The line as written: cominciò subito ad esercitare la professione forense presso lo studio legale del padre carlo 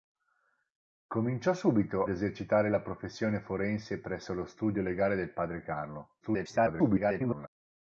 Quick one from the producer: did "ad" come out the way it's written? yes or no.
no